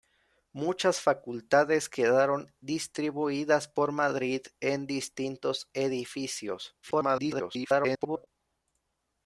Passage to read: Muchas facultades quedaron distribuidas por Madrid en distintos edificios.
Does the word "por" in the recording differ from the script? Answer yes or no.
no